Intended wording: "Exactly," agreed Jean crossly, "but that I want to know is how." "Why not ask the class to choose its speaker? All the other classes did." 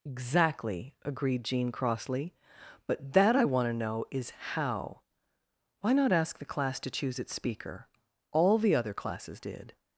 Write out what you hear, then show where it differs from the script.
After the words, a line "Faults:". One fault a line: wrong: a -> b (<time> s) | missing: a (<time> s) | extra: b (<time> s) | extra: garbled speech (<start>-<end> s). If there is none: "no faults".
"Exactly," agreed Jean crossly, "but that I want to know is how." "Why not ask the class to choose its speaker? All the other classes did."
Faults:
no faults